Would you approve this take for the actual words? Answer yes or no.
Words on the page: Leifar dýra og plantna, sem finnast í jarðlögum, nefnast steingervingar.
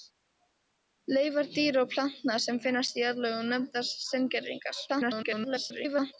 no